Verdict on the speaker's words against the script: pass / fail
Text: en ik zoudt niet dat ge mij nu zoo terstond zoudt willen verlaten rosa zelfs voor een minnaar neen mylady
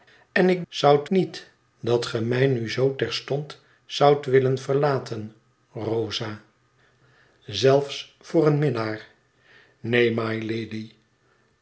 pass